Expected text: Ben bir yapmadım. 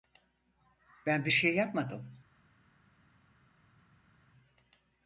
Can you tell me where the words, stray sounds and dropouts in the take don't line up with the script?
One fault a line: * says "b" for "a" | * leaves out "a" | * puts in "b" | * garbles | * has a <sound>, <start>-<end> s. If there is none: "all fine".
* puts in "şey"